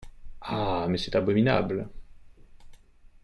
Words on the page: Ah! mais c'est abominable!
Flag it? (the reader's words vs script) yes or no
no